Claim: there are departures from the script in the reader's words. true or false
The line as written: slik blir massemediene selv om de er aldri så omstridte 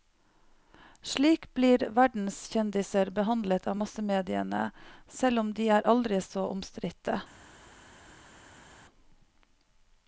true